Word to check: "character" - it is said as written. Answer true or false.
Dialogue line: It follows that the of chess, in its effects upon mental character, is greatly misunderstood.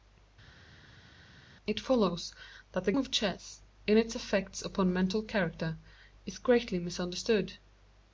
true